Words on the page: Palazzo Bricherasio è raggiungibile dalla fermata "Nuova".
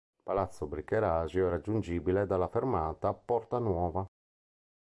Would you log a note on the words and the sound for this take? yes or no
yes